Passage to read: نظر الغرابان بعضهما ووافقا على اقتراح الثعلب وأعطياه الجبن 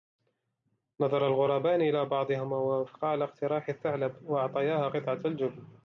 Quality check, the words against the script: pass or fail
fail